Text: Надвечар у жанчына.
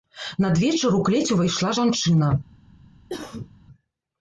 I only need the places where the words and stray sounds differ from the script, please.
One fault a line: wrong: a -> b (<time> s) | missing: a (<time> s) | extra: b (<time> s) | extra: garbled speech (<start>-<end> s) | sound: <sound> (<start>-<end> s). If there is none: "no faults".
extra: клець увайшла (1.1 s)
sound: cough (3.1-3.5 s)